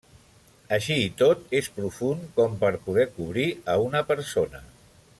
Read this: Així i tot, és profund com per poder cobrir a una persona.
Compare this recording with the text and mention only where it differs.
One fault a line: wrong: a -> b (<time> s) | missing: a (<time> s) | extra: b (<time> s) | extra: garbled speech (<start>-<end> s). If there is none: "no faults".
no faults